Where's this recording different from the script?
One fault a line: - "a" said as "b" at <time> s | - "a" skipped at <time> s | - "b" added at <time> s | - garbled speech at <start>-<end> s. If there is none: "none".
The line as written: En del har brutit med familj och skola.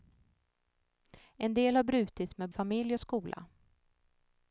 none